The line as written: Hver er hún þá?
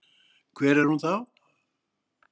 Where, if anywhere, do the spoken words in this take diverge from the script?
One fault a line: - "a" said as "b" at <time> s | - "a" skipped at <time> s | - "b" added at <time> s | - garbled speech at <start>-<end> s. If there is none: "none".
none